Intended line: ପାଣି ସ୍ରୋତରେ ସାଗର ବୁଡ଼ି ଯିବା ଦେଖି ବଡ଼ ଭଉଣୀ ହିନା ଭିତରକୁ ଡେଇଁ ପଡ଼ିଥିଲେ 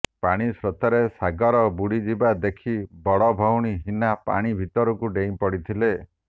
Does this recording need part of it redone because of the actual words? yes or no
yes